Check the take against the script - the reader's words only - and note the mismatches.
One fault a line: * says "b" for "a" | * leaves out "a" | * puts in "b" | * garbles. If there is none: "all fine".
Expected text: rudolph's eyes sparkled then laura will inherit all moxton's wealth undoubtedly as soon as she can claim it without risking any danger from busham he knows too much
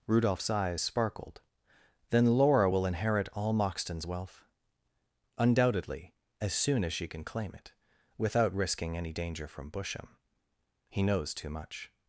all fine